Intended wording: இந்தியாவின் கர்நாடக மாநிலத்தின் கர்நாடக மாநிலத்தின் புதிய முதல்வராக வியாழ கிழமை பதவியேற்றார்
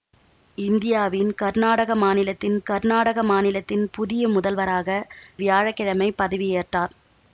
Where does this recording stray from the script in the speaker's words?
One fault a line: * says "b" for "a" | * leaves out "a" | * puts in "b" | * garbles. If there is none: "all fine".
all fine